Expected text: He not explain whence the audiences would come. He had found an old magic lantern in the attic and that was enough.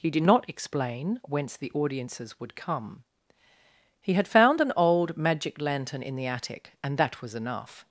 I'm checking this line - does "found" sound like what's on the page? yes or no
yes